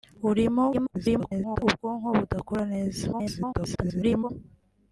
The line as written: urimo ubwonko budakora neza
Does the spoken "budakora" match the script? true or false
true